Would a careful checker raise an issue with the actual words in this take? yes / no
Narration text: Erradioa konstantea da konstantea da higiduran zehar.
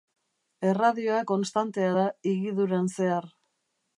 yes